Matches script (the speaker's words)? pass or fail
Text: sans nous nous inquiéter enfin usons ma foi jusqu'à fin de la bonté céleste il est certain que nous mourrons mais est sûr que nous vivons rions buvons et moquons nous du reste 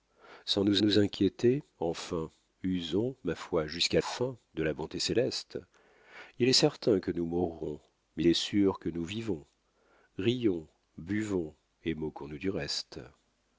pass